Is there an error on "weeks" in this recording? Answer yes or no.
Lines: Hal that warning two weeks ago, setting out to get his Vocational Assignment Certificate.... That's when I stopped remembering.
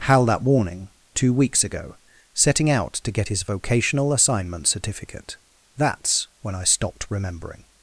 no